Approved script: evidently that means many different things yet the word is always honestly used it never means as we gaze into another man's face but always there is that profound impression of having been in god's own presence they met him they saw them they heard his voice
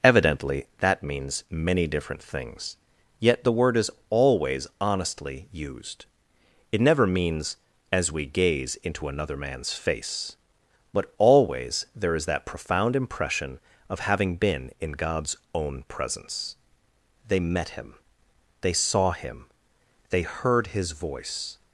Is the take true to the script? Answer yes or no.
no